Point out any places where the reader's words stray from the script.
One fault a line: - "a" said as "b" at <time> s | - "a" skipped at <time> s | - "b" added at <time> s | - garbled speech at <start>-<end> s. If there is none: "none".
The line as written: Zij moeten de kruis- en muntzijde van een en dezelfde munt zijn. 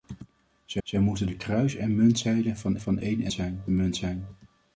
- "zij" added at 0.8 s
- "van" added at 2.8 s
- "dezelfde" said as "zijn" at 3.3 s